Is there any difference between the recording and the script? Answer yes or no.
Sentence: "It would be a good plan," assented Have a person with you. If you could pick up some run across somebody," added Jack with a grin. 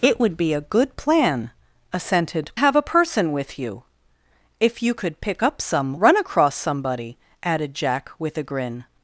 no